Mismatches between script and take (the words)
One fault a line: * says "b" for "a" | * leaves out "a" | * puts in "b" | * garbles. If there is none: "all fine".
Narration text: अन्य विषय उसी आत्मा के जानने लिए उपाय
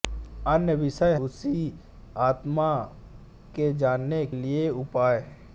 all fine